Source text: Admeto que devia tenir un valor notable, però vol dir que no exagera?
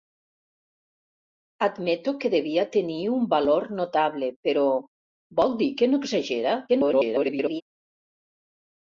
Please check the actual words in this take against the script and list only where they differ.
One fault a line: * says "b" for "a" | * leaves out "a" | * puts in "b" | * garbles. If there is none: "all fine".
* garbles